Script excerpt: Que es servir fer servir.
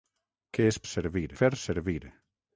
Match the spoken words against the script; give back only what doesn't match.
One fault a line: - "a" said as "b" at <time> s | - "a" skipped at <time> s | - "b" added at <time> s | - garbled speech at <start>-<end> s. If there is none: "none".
none